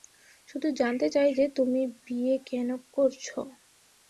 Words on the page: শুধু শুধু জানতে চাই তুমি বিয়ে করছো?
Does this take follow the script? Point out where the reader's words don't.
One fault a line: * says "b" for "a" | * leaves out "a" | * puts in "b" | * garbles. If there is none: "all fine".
* leaves out "শুধু"
* puts in "যে"
* puts in "কেন"